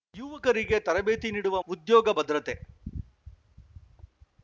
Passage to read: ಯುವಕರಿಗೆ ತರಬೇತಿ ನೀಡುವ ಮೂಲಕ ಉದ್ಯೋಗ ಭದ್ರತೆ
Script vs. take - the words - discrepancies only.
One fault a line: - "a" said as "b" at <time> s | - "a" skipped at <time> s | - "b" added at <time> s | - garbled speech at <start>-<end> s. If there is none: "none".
- "ಮೂಲಕ" skipped at 1.6 s